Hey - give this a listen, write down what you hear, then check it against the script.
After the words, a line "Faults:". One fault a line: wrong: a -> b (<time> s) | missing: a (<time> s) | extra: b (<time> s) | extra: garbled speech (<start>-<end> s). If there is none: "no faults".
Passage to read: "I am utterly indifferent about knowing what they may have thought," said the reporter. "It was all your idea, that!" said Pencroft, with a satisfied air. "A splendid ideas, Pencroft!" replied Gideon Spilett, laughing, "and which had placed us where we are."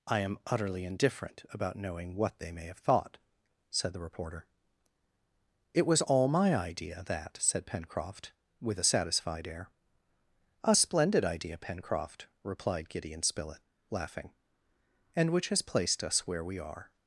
"I am utterly indifferent about knowing what they may have thought," said the reporter. "It was all my idea, that!" said Pencroft, with a satisfied air. "A splendid idea, Pencroft!" replied Gideon Spilett, laughing, "and which has placed us where we are."
Faults:
wrong: your -> my (6.3 s)
wrong: ideas -> idea (11.2 s)
wrong: had -> has (15.5 s)